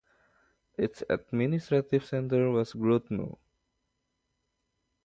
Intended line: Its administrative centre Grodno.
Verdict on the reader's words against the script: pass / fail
fail